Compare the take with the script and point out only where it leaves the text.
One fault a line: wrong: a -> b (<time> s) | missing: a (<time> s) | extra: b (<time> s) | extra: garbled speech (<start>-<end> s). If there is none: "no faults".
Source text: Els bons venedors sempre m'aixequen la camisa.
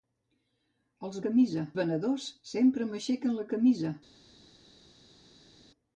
wrong: bons -> camisa (1.3 s)